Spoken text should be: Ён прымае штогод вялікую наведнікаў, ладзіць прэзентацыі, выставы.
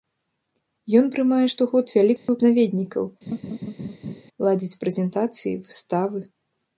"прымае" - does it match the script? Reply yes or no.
yes